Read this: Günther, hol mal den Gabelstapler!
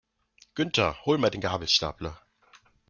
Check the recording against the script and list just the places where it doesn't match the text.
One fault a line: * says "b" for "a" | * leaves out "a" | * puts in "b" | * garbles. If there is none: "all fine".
all fine